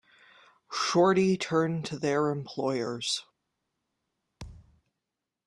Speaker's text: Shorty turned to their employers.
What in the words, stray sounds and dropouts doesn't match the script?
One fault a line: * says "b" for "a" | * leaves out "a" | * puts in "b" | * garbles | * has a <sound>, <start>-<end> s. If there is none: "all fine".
* has a thud, 4.4-4.8 s